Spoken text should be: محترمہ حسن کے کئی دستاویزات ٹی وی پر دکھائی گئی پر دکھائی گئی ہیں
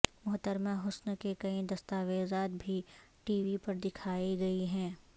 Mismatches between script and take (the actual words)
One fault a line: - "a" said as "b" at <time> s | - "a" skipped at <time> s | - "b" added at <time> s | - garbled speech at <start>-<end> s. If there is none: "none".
- "بھی" added at 2.6 s
- "پر دکھائی گئی" skipped at 4.6 s